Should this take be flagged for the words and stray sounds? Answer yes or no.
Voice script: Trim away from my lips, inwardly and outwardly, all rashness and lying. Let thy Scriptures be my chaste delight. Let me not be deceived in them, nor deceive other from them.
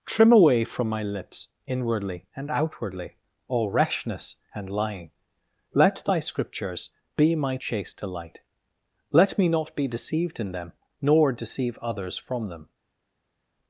yes